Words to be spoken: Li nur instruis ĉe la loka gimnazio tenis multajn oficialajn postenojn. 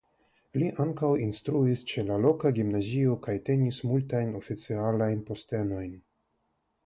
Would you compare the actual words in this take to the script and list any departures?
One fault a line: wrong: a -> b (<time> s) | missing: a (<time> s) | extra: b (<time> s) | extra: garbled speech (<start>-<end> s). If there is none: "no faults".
wrong: nur -> ankaŭ (0.8 s)
extra: kaj (3.3 s)